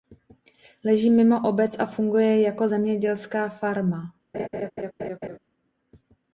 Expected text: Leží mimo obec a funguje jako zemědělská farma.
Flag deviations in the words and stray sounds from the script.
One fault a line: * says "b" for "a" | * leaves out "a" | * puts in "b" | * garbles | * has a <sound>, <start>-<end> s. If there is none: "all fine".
* has a laugh, 4.3-5.4 s